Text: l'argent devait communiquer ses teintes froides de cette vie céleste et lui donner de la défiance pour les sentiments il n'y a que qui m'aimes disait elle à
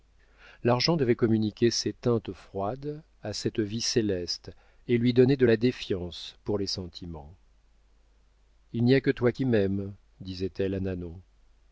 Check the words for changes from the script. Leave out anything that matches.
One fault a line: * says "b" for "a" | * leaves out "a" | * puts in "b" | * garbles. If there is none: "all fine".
* says "à" for "de"
* puts in "toi"